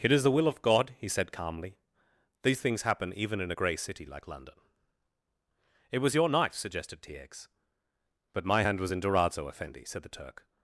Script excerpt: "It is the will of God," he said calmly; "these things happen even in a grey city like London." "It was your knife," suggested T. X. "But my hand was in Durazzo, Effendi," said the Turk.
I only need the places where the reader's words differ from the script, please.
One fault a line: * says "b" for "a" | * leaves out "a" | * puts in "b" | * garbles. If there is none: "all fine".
all fine